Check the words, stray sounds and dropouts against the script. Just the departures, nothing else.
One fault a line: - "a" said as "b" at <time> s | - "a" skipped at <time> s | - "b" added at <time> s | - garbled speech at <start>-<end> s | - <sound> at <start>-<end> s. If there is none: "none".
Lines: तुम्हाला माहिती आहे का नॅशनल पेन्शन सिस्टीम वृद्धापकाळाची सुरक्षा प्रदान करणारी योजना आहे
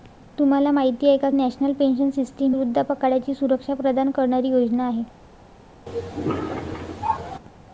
- cough at 5.9-7.4 s